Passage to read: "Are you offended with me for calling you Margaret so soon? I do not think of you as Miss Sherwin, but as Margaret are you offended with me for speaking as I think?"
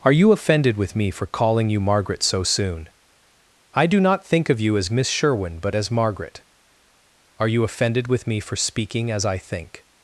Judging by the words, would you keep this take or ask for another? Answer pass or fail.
pass